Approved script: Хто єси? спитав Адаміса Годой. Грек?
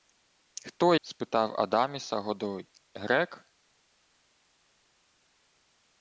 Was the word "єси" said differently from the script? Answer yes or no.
yes